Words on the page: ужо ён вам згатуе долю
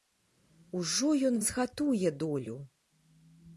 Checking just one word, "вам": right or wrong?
wrong